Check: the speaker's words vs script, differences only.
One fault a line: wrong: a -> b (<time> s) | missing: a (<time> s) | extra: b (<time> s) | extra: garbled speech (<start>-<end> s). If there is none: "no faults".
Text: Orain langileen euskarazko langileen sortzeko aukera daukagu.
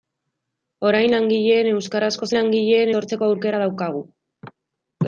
no faults